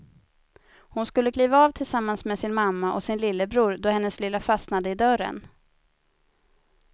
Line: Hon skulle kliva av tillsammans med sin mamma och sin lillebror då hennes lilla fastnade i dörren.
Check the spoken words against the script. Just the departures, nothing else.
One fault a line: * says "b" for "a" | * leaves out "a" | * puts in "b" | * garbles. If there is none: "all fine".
all fine